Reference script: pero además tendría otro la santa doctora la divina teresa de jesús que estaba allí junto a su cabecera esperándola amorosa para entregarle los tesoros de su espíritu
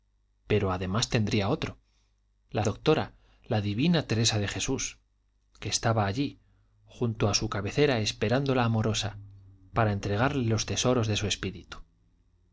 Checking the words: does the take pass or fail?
fail